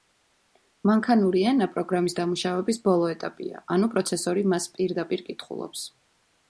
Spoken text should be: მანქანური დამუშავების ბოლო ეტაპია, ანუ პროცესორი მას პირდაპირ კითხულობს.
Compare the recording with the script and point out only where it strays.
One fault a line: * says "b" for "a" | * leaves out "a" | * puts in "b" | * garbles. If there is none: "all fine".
* puts in "ენა პროგრამის"